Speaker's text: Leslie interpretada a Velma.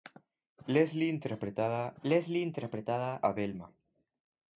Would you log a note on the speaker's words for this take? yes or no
yes